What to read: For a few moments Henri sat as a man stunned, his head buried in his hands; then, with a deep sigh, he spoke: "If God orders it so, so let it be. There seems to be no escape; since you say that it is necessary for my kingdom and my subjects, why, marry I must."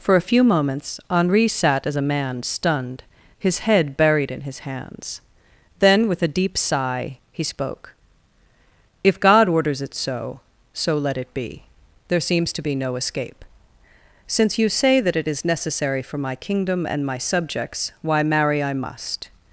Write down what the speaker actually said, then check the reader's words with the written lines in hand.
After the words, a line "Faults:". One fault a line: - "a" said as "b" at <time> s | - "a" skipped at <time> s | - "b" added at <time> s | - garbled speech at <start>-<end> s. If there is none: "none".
For a few moments Henri sat as a man stunned, his head buried in his hands; then, with a deep sigh, he spoke: "If God orders it so, so let it be. There seems to be no escape; since you say that it is necessary for my kingdom and my subjects, why, marry I must."
Faults:
none